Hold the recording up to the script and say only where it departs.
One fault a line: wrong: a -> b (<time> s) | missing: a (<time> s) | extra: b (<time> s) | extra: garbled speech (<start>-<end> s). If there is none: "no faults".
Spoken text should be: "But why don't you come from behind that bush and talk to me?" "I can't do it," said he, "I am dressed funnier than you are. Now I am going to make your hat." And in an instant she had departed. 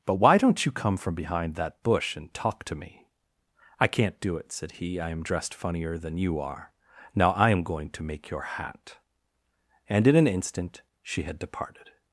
no faults